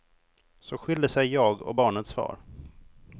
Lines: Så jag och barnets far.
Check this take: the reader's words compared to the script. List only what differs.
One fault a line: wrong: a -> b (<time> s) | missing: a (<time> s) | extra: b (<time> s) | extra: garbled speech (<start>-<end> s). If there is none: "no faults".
extra: skilde sig (0.8 s)